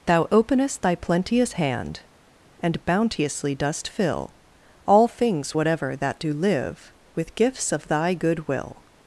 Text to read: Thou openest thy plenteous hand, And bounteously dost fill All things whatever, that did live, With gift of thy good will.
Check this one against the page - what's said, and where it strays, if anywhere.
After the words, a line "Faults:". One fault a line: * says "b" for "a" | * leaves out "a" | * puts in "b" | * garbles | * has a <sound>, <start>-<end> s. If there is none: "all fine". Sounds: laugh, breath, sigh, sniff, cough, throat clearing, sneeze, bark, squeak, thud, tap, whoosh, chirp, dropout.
Thou openest thy plenteous hand, And bounteously dost fill All things whatever, that do live, With gifts of thy good will.
Faults:
* says "do" for "did"
* says "gifts" for "gift"